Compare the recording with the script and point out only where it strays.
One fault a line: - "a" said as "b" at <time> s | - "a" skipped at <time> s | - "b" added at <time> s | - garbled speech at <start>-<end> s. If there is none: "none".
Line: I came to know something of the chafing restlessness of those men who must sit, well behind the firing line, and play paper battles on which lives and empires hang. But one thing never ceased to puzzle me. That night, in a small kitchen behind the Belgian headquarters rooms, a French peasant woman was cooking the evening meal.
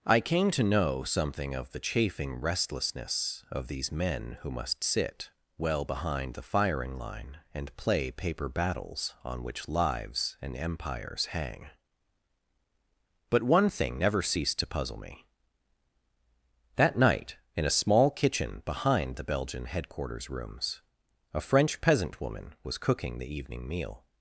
- "those" said as "these" at 3.7 s